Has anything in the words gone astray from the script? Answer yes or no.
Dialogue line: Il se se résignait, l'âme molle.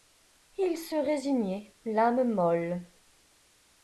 yes